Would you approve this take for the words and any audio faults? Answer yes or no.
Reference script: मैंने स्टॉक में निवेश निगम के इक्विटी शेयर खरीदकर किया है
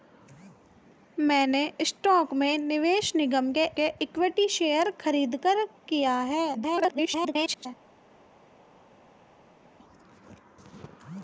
no